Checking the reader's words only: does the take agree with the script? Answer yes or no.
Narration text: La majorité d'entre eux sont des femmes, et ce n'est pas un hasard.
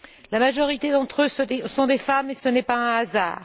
yes